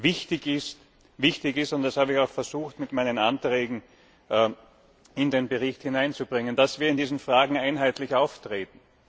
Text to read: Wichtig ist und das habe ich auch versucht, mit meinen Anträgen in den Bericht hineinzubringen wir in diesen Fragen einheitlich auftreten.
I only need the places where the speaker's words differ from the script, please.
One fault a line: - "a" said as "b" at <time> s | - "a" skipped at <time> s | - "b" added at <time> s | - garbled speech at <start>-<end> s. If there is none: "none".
- "dass" added at 6.6 s